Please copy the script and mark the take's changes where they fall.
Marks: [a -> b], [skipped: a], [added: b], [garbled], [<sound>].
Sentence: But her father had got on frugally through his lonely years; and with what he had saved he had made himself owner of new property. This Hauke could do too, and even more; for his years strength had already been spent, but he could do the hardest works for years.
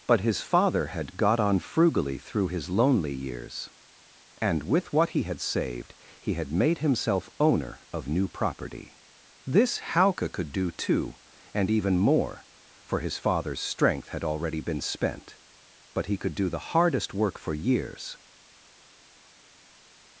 But [her -> his] father had got on frugally through his lonely years; and with what he had saved he had made himself owner of new property. This Hauke could do too, and even more; for his [years -> father's] strength had already been spent, but he could do the hardest [works -> work] for years.